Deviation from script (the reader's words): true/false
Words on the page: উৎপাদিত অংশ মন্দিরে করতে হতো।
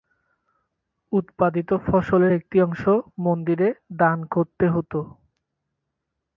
true